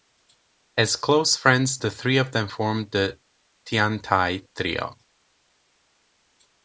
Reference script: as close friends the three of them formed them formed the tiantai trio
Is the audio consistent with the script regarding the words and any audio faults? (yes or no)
no